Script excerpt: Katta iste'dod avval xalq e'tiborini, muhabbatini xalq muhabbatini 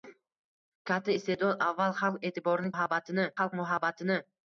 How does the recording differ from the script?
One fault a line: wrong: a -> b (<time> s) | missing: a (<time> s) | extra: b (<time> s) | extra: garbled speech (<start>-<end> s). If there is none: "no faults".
no faults